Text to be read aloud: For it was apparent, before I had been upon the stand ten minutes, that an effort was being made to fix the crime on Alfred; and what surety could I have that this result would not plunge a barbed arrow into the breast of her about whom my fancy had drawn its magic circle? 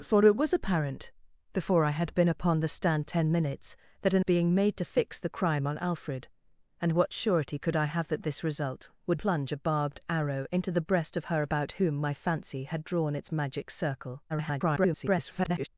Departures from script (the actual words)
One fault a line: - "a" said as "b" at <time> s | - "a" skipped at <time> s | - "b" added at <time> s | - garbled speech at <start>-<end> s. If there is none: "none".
- "effort was" skipped at 4.2 s
- "not" skipped at 9.2 s
- garbled speech at 14.3-15.7 s